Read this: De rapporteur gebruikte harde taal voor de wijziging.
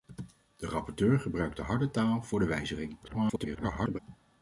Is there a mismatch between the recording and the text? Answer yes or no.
yes